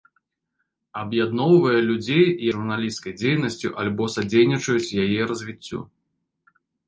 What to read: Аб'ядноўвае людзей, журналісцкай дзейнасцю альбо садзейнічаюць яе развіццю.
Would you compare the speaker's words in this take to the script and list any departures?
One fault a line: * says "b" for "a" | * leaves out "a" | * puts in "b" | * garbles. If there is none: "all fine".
all fine